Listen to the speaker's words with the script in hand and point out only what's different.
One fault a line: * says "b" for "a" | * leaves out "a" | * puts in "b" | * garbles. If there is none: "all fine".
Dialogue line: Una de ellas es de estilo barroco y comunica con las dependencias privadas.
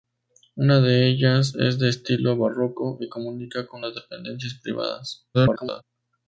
* garbles